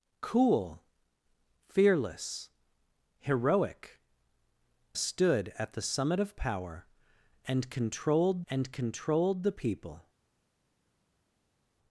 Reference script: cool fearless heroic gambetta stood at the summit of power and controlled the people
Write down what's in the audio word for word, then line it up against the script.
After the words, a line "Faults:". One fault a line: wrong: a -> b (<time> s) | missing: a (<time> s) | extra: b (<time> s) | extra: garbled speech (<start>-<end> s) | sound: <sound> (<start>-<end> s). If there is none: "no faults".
cool fearless heroic stood at the summit of power and controlled and controlled the people
Faults:
missing: gambetta (4.0 s)
extra: and controlled (8.5 s)